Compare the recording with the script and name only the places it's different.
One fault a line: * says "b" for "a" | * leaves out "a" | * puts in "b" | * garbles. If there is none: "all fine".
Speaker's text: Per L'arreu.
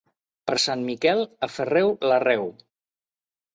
* puts in "Sant Miquel aferreu"